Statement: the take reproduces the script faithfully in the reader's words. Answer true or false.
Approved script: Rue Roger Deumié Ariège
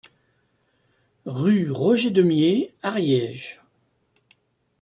true